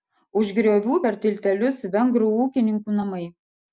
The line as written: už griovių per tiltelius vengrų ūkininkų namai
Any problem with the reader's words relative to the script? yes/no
no